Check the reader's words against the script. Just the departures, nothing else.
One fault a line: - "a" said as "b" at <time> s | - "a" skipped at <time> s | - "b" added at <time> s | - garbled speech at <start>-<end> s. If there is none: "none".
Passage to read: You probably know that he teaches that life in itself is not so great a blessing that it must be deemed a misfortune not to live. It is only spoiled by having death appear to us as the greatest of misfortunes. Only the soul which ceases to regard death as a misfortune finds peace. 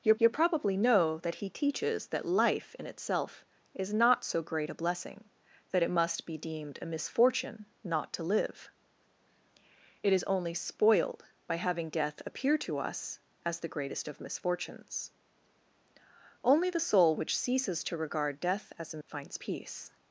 - "you" added at 0.2 s
- "misfortune" skipped at 19.0 s